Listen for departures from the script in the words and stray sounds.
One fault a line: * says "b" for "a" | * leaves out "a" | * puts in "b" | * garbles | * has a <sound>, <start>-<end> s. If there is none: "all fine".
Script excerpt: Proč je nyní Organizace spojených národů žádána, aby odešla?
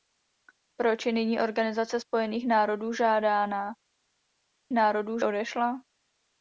* says "národů" for "aby"